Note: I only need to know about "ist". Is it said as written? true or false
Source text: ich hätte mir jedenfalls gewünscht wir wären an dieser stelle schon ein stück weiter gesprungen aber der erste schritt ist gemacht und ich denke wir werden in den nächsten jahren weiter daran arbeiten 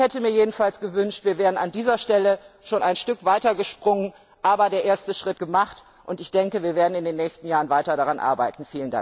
false